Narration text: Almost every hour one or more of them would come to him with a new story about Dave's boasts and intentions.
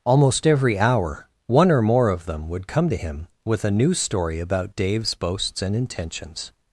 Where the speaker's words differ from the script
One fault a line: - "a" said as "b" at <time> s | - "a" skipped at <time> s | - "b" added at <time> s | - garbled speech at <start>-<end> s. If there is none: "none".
none